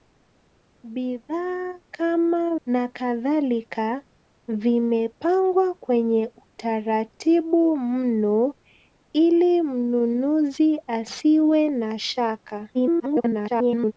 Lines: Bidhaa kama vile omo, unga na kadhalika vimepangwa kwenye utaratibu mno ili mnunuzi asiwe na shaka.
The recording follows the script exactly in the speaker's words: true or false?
false